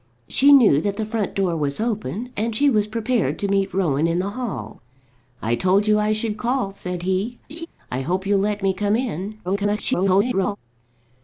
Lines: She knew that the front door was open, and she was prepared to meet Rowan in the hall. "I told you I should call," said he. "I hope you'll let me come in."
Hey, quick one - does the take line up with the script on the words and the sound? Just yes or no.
no